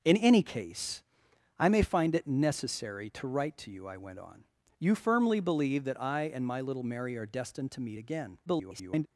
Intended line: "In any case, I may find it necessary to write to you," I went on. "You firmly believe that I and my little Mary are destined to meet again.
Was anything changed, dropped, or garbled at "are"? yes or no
no